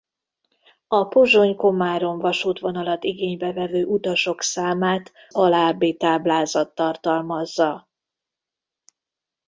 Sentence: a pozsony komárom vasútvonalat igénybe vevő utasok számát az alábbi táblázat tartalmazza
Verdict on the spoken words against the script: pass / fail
fail